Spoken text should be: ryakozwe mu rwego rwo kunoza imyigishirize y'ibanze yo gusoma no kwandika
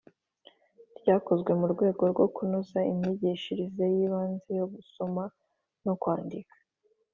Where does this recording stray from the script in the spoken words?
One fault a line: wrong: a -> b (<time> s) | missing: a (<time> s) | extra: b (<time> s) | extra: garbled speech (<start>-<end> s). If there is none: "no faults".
no faults